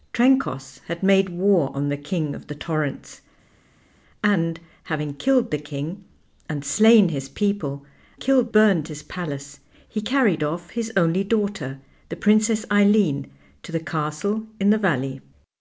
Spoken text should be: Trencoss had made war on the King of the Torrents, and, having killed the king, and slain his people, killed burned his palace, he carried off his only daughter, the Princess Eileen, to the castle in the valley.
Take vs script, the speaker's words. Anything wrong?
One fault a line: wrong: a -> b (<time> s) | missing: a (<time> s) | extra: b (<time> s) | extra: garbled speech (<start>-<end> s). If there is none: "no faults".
no faults